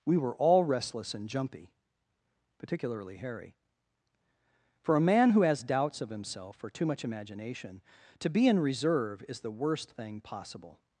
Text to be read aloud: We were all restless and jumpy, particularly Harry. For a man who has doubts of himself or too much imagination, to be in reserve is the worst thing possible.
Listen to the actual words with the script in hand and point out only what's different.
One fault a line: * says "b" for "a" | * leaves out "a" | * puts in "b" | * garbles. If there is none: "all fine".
all fine